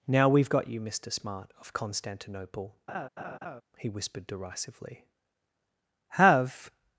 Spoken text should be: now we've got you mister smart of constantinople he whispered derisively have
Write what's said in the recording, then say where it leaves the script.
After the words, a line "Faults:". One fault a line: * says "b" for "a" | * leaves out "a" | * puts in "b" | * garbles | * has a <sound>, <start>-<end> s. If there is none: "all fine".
now we've got you mister smart of constantinople he whispered derisively have
Faults:
* has a laugh, 2.9-3.6 s